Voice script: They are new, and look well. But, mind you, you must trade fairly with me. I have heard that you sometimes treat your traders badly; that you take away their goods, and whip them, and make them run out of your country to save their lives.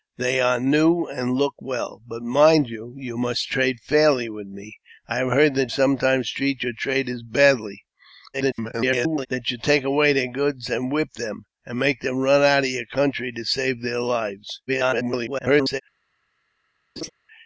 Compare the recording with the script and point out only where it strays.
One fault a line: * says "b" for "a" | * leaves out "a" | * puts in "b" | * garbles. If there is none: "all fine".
* leaves out "you"
* garbles
* garbles